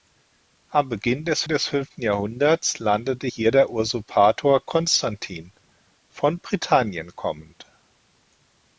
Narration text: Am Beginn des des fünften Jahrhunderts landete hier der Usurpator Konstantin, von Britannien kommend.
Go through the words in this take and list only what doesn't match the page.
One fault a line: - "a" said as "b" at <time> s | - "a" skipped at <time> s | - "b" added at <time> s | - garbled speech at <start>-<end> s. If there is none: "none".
none